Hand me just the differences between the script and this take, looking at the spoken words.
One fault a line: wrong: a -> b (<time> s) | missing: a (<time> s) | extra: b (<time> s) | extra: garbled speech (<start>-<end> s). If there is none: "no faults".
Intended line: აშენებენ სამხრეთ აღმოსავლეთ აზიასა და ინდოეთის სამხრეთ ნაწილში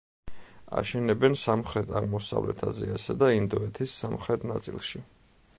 no faults